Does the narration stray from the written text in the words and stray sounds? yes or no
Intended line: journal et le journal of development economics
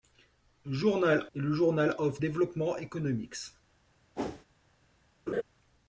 yes